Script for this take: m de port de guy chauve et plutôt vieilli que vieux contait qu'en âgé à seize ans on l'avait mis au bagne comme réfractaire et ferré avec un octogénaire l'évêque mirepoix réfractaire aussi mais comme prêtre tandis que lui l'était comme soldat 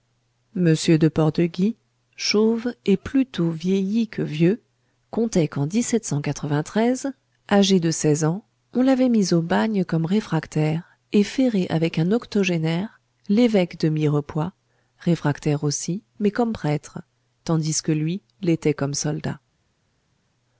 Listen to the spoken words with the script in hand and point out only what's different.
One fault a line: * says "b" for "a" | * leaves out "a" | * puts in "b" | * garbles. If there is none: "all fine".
* says "de" for "à"
* puts in "de"